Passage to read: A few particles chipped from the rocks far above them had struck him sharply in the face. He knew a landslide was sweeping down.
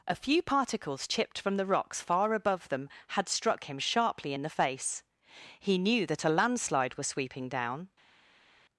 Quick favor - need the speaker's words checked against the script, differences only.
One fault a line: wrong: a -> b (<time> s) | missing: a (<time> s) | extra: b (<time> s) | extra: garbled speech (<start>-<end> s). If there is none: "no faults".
extra: that (6.1 s)